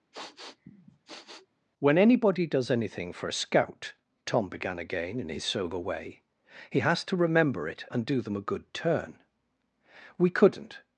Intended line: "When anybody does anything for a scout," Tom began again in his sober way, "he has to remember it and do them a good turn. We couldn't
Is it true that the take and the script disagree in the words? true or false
false